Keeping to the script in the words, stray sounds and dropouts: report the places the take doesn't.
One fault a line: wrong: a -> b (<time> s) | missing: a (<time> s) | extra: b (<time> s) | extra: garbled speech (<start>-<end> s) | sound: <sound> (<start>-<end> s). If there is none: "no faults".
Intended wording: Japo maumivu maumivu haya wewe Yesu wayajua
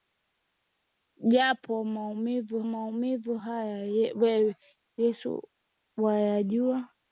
no faults